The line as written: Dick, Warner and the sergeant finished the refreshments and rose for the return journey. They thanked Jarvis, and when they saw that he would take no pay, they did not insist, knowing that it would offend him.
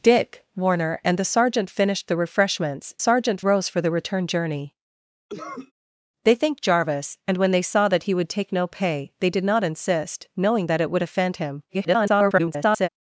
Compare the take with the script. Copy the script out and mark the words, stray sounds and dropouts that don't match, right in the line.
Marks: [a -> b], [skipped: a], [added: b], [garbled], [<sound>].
Dick, Warner and the sergeant finished the refreshments [and -> sergeant] rose for the return journey. [cough] They thanked Jarvis, and when they saw that he would take no pay, they did not insist, knowing that it would offend him. [garbled]